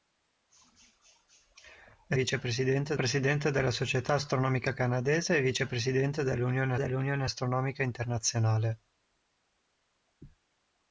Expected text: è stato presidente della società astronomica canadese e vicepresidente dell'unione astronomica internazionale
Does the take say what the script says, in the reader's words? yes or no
no